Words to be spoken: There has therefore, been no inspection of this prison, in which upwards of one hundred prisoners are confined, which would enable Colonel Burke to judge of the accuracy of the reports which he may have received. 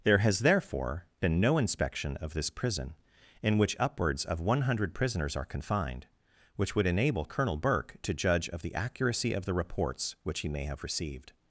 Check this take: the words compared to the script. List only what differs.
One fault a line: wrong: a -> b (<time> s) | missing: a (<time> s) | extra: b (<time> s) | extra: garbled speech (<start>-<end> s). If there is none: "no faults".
no faults